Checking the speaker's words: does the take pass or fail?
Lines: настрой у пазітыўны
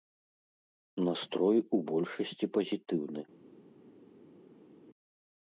fail